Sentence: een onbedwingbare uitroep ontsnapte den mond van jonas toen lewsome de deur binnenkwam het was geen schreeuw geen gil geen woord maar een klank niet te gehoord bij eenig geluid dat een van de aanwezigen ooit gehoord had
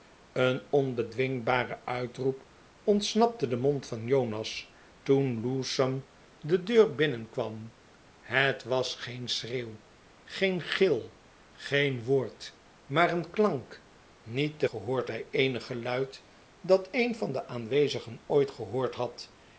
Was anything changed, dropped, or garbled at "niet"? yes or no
no